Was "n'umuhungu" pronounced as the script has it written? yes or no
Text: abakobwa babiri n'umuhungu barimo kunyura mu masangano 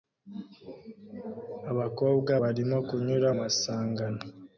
no